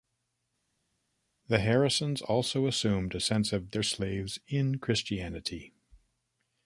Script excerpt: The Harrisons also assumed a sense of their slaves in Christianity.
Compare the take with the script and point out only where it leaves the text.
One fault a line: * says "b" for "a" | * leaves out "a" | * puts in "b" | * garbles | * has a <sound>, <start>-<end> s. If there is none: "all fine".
all fine